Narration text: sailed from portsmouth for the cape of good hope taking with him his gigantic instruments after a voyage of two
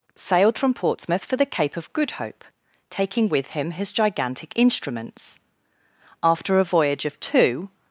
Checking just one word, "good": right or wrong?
right